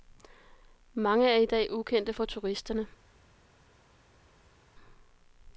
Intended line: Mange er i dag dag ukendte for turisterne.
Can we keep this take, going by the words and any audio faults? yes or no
no